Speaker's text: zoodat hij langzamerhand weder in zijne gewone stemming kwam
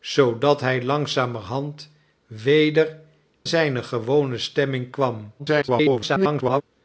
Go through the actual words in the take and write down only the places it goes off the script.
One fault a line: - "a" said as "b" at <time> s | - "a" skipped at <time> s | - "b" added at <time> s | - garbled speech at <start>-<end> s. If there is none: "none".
- "in" skipped at 3.0 s
- garbled speech at 5.4-6.6 s